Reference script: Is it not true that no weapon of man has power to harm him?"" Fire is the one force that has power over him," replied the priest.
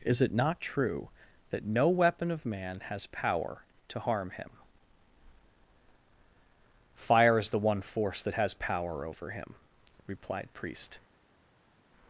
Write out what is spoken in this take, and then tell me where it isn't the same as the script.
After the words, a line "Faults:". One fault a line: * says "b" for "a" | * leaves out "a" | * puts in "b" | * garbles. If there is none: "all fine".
Is it not true that no weapon of man has power to harm him?"" Fire is the one force that has power over him," replied priest.
Faults:
* leaves out "the"